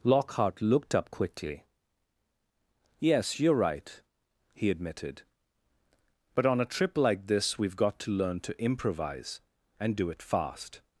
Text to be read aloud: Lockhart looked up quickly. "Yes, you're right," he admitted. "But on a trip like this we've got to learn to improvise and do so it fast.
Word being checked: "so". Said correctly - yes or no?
no